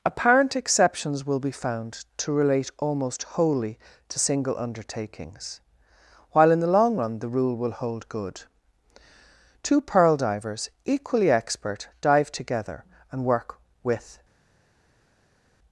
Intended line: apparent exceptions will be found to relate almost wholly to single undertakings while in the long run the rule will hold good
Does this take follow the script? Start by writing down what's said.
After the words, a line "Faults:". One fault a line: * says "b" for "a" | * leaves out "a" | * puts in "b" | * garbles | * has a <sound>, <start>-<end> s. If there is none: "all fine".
apparent exceptions will be found to relate almost wholly to single undertakings while in the long run the rule will hold good two pearl divers equally expert dive together and work with
Faults:
* puts in "two pearl divers equally expert dive together and work with"